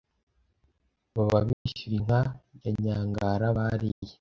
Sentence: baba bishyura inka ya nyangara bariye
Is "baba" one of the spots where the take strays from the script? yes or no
no